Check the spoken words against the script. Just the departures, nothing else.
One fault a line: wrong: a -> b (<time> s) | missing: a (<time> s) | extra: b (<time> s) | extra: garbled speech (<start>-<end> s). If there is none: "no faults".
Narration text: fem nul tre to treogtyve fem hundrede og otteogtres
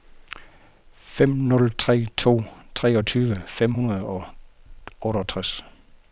no faults